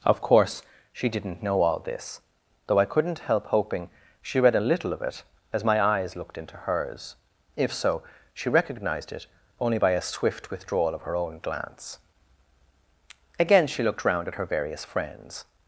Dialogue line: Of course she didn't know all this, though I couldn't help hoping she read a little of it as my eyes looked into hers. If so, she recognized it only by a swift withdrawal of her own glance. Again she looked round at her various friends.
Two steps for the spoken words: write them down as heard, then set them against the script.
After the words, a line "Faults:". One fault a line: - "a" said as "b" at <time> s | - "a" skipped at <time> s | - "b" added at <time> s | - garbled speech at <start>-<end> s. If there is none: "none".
Of course she didn't know all this, though I couldn't help hoping she read a little of it as my eyes looked into hers. If so, she recognized it only by a swift withdrawal of her own glance. Again she looked round at her various friends.
Faults:
none